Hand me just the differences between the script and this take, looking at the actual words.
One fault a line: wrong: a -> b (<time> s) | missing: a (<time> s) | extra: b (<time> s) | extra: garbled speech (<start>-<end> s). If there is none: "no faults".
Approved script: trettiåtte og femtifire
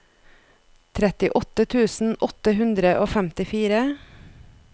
extra: tusen åtte hundre (1.8 s)